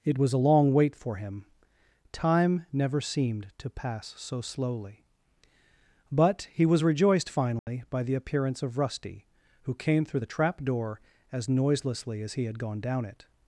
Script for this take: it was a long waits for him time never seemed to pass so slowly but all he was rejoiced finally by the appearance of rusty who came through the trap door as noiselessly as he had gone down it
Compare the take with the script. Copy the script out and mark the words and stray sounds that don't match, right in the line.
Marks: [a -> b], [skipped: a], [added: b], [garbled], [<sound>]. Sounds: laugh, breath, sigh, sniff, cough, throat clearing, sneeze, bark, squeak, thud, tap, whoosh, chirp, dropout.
it was a long [waits -> wait] for him time never seemed to pass so slowly but [skipped: all] he was rejoiced finally [dropout] by the appearance of rusty who came through the trap door as noiselessly as he had gone down it